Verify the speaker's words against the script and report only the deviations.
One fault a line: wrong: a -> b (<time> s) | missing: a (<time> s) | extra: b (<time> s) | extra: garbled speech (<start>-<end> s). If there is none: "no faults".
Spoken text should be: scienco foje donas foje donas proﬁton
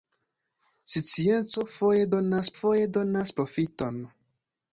no faults